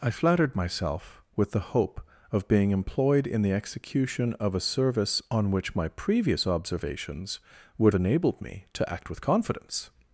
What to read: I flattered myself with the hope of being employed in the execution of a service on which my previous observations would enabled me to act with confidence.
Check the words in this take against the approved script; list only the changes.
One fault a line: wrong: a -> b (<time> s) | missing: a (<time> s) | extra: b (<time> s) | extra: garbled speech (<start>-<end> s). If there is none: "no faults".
no faults